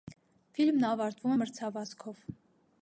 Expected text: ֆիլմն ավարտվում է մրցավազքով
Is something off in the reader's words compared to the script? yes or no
no